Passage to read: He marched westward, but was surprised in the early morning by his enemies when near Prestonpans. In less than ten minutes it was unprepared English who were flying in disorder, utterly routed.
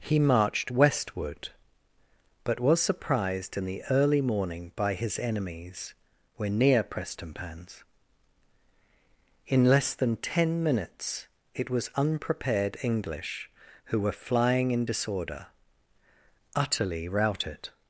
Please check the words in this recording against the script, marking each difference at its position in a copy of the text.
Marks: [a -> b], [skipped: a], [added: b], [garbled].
He marched westward, but was surprised in the early morning by his enemies when near Prestonpans. In less than ten minutes it was unprepared English who were flying in disorder, utterly routed.